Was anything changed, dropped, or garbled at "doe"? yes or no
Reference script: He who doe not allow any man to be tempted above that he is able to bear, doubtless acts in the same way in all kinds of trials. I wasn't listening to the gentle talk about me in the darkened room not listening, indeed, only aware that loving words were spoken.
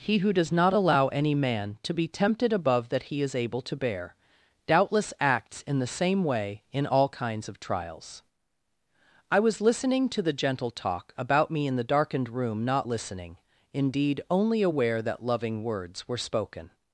yes